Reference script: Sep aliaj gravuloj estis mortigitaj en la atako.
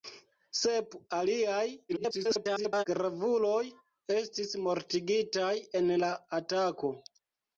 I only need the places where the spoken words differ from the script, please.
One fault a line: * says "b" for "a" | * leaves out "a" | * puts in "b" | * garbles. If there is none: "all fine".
* garbles